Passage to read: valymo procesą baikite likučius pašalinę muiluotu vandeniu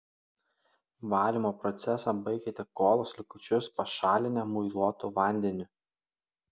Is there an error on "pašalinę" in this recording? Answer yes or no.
no